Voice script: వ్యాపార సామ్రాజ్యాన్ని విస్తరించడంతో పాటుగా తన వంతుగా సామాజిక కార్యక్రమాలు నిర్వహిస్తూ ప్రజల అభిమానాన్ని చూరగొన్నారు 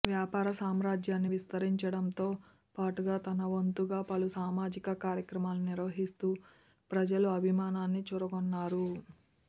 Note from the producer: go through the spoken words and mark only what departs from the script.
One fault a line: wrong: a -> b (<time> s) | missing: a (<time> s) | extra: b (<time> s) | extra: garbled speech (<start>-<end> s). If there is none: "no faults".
extra: పలు (4.1 s)